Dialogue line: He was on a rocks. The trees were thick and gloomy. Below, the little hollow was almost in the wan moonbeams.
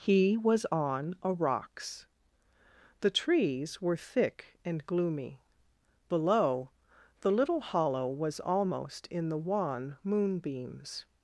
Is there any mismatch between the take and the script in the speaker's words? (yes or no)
no